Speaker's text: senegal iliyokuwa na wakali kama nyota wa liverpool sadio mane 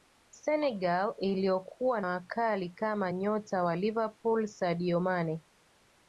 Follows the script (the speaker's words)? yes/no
no